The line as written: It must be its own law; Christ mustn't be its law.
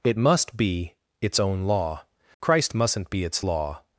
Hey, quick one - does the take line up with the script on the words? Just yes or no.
yes